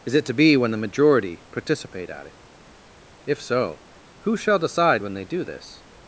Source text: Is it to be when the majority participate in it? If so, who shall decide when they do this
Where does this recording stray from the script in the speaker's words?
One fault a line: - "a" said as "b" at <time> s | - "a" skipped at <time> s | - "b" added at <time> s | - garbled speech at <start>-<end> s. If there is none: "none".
- "in" said as "at" at 2.1 s